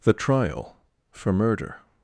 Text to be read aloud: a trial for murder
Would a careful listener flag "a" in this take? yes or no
yes